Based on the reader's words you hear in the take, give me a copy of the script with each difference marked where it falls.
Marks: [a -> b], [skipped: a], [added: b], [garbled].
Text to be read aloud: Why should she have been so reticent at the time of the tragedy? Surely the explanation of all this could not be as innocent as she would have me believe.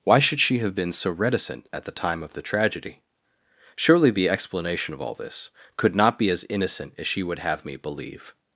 Why should she have been so reticent at the time of the tragedy? Surely the explanation of all this could not be as innocent as she would have me believe.